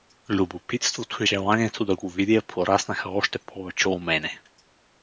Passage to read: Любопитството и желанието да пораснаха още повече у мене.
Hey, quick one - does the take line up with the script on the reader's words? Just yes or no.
no